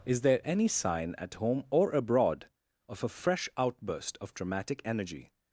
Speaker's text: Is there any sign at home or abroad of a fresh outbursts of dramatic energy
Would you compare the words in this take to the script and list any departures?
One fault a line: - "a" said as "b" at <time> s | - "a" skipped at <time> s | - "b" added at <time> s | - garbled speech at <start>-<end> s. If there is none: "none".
- "outbursts" said as "outburst" at 3.6 s